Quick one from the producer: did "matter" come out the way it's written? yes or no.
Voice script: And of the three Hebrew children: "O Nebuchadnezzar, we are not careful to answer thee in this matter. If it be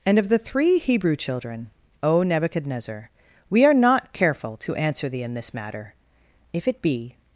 yes